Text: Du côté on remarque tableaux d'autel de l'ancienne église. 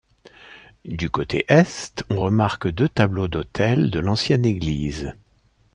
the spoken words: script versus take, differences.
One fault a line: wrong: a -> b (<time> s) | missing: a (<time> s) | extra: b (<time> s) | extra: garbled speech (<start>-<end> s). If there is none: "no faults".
extra: est (1.5 s)
extra: deux (2.7 s)